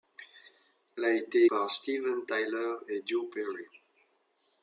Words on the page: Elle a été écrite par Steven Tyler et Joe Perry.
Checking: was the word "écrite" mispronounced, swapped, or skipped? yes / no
yes